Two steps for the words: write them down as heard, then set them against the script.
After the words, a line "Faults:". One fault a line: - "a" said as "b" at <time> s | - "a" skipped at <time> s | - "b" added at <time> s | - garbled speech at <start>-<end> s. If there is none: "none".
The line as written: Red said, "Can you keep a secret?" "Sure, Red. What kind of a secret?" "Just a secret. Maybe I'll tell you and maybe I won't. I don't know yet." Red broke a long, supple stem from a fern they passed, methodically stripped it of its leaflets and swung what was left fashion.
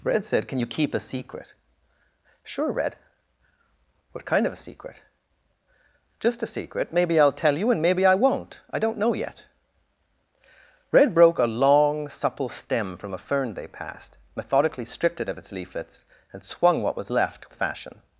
Red said, "Can you keep a secret?" "Sure, Red. What kind of a secret?" "Just a secret. Maybe I'll tell you and maybe I won't. I don't know yet." Red broke a long, supple stem from a fern they passed, methodically stripped it of its leaflets and swung what was left fashion.
Faults:
none